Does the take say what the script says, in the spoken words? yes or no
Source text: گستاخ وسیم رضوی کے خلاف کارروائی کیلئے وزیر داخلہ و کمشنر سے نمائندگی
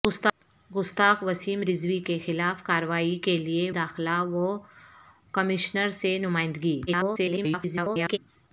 no